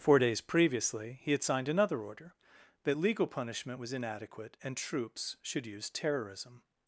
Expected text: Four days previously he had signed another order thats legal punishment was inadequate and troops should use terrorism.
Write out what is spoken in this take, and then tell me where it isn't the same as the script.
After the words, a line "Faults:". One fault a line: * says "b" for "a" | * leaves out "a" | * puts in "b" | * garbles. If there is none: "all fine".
Four days previously he had signed another order that legal punishment was inadequate and troops should use terrorism.
Faults:
* says "that" for "thats"